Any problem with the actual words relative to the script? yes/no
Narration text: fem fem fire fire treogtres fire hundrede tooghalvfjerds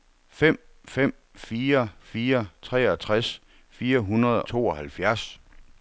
no